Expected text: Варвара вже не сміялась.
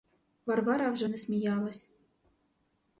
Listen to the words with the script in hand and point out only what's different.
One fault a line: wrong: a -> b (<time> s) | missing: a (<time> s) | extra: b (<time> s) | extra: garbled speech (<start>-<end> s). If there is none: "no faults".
no faults